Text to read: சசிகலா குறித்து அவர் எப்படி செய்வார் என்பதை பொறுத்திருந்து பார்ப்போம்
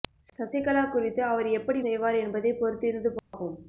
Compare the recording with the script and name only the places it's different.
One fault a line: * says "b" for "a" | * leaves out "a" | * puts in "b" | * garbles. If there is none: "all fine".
all fine